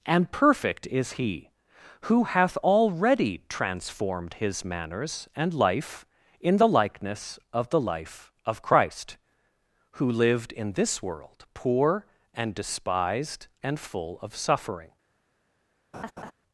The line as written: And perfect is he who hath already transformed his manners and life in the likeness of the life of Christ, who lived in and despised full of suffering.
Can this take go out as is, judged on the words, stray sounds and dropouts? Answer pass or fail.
fail